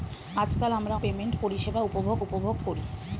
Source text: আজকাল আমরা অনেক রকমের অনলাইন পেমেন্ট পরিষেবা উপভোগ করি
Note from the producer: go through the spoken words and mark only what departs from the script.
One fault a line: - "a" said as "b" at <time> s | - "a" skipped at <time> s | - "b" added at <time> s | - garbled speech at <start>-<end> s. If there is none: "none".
- "অনেক রকমের অনলাইন" skipped at 0.9 s
- "উপভোগ" added at 2.2 s